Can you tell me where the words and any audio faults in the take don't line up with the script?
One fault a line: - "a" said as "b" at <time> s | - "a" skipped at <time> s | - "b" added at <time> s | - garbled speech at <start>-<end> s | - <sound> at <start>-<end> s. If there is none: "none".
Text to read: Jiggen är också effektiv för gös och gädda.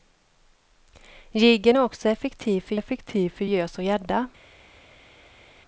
- "effektiv för" added at 2.7 s